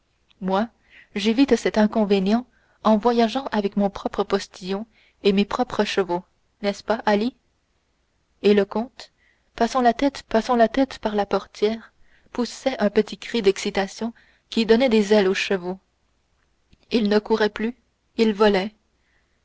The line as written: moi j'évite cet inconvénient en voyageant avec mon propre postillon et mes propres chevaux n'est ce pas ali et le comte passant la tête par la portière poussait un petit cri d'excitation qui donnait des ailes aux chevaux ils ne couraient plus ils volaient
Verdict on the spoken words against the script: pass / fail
fail